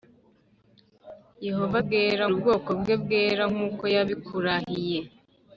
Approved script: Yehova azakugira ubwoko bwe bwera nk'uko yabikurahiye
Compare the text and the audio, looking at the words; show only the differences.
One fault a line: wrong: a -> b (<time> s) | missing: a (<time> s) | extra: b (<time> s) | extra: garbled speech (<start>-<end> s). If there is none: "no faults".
wrong: azakugira -> bwera (1.8 s)